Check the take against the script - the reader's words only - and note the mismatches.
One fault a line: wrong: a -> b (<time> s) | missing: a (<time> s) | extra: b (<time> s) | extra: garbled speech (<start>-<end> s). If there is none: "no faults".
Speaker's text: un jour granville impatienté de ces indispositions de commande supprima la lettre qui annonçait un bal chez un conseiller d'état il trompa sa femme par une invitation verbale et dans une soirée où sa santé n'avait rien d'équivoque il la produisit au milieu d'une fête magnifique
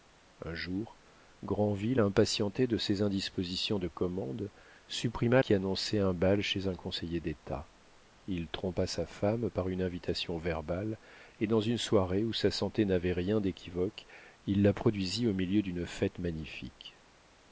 missing: la lettre (5.4 s)